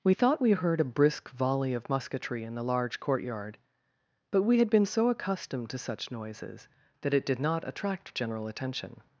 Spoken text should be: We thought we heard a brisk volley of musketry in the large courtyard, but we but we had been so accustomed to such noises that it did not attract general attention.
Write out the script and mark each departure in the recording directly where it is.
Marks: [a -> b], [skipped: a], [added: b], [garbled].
We thought we heard a brisk volley of musketry in the large courtyard, but we [skipped: but we] had been so accustomed to such noises that it did not attract general attention.